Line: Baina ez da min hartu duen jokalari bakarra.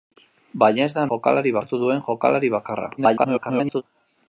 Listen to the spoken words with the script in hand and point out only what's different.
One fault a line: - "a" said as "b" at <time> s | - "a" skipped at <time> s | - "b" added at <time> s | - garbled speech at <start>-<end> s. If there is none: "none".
- "min" said as "jokalari" at 1.1 s
- garbled speech at 3.0-3.8 s